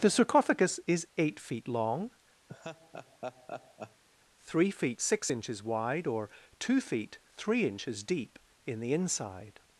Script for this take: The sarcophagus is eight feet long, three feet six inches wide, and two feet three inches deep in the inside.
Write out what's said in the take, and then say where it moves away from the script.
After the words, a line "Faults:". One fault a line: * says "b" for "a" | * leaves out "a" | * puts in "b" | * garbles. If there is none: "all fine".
The sarcophagus is eight feet long, three feet six inches wide, or two feet three inches deep in the inside.
Faults:
* says "or" for "and"